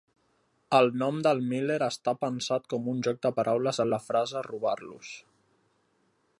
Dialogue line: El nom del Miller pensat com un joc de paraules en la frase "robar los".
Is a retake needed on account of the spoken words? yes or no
yes